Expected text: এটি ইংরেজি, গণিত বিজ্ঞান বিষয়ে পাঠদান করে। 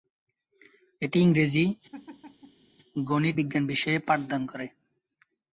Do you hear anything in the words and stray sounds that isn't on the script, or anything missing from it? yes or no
yes